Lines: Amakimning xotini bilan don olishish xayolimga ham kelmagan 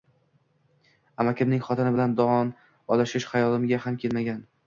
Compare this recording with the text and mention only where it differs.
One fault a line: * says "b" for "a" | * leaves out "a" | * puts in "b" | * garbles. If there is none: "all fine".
all fine